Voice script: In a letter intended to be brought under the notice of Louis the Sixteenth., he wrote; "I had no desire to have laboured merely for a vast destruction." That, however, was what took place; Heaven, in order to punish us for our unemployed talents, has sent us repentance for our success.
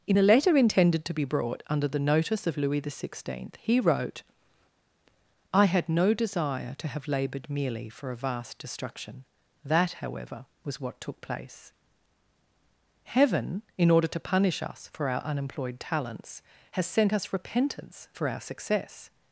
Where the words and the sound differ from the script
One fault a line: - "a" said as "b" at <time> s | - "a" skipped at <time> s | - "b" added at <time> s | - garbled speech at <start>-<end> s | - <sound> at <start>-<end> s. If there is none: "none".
none